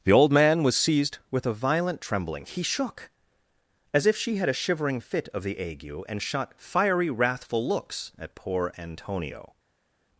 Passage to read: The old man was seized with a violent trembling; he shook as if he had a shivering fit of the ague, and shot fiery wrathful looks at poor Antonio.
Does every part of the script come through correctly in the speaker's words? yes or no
no